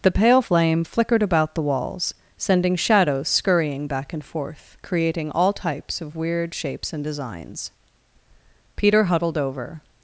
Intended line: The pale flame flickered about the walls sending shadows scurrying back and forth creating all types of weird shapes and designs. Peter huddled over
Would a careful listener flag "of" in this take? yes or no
no